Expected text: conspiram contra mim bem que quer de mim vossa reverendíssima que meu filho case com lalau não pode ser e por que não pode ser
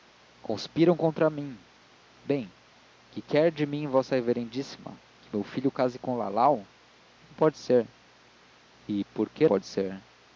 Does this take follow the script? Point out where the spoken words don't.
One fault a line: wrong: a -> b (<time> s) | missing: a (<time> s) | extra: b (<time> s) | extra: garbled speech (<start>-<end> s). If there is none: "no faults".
missing: não (9.5 s)